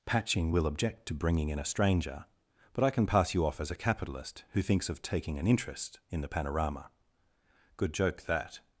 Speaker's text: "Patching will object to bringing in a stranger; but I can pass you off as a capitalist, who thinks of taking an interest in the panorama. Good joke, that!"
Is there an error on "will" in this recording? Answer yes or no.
no